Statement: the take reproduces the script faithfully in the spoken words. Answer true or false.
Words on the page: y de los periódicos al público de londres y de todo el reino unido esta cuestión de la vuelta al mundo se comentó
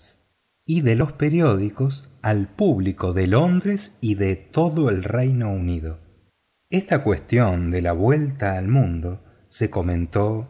true